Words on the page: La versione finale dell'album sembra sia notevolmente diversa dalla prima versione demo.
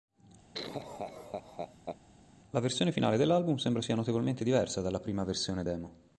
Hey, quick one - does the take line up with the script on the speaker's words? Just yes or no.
yes